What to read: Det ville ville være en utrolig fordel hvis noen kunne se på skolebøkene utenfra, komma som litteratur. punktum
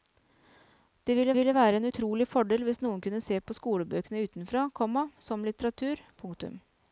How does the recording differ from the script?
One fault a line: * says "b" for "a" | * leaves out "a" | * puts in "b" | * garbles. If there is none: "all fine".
all fine